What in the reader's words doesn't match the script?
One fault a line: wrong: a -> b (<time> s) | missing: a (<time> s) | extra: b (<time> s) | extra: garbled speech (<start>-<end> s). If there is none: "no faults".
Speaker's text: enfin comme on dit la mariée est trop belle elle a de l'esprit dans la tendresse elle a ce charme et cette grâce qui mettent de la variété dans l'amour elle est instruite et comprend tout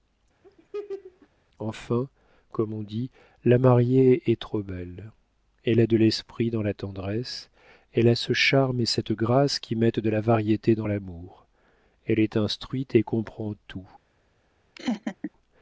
no faults